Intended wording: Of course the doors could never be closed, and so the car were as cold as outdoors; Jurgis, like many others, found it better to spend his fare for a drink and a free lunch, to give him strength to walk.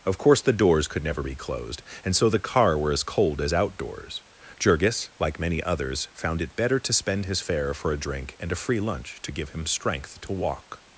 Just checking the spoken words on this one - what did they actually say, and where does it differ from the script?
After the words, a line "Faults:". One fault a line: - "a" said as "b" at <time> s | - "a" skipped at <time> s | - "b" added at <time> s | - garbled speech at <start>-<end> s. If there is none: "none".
Of course the doors could never be closed, and so the car were as cold as outdoors; Jurgis, like many others, found it better to spend his fare for a drink and a free lunch, to give him strength to walk.
Faults:
none